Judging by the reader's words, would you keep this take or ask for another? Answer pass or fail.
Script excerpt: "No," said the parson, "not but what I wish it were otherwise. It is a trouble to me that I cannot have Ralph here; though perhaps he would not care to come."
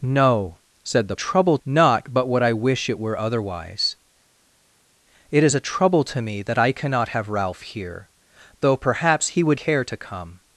fail